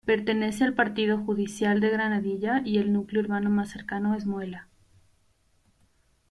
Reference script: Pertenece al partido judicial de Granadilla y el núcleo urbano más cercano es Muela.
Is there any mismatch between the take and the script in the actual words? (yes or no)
no